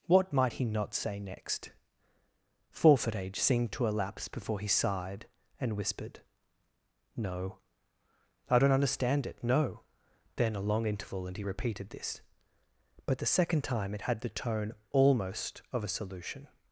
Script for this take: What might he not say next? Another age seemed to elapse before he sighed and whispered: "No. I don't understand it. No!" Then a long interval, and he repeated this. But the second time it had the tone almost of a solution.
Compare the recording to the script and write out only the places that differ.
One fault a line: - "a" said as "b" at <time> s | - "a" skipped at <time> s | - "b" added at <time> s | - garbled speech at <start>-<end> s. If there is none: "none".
- "Another" said as "Forfeit" at 2.7 s